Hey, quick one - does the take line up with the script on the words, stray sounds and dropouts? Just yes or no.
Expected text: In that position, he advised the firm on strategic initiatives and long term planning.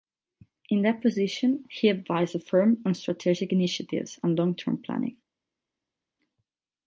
yes